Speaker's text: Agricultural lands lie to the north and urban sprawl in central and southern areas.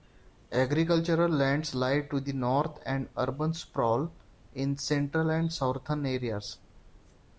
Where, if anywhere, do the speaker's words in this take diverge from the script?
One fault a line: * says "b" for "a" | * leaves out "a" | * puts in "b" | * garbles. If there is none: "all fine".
all fine